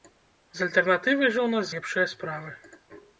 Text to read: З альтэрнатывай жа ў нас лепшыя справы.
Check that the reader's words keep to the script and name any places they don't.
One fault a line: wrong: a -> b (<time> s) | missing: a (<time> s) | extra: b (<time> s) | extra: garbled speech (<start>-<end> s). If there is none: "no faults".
no faults